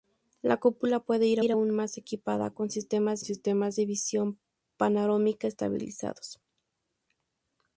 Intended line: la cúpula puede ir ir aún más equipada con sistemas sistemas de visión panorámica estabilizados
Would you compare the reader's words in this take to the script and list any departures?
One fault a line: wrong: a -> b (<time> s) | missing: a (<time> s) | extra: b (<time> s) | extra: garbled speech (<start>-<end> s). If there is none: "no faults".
no faults